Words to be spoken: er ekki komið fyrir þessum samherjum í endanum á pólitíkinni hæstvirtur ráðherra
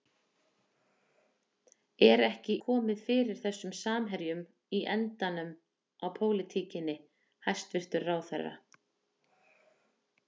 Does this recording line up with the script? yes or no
yes